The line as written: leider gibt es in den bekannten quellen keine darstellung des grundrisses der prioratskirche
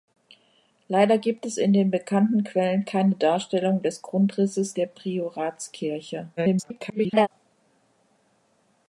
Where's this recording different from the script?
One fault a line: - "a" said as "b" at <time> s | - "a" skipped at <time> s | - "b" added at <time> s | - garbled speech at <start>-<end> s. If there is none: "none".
- garbled speech at 6.4-7.3 s